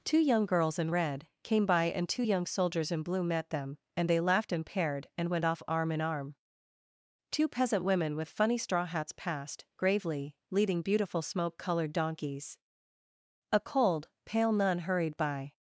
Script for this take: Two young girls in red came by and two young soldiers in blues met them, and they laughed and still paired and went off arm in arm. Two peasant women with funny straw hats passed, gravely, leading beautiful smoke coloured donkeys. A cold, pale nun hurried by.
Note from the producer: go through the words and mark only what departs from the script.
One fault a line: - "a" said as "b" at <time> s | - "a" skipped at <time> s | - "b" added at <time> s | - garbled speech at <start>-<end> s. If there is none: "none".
- "blues" said as "blue" at 3.0 s
- "still" skipped at 4.7 s